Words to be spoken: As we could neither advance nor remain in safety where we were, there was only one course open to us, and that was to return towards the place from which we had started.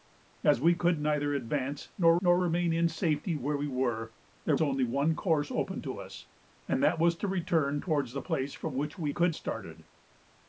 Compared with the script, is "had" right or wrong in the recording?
wrong